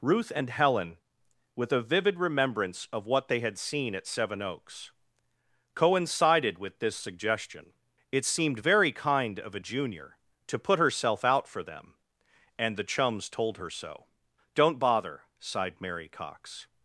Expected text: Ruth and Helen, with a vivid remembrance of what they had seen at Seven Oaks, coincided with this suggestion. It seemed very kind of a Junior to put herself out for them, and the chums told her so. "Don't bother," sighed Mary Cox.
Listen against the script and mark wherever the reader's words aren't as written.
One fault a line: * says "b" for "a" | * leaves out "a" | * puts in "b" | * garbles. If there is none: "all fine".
all fine